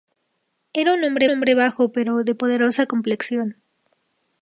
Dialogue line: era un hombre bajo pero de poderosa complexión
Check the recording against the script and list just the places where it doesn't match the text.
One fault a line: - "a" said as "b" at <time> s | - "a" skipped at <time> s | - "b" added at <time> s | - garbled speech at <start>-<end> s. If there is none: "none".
- "hombre" added at 1.3 s